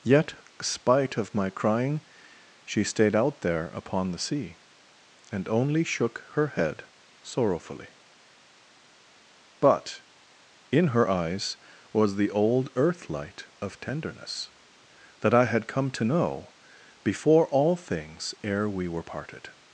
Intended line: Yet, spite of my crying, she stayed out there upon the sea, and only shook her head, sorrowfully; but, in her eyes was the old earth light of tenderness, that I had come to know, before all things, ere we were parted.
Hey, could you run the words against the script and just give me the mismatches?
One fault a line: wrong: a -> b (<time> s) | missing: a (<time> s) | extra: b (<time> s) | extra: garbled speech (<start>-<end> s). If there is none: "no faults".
no faults